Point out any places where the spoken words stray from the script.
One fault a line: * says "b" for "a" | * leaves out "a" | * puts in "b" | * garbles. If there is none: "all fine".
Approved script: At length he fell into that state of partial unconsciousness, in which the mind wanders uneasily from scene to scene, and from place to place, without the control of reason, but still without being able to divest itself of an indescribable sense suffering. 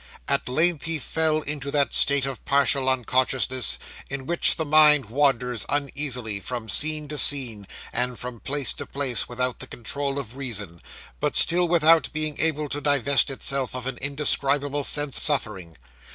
all fine